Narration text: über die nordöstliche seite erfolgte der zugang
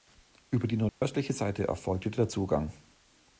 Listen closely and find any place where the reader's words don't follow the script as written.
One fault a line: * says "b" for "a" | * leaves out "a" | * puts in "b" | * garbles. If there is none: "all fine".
all fine